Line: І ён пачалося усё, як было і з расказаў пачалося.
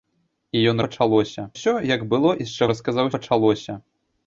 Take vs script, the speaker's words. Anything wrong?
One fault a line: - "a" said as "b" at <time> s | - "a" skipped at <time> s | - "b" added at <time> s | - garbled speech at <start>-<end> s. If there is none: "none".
none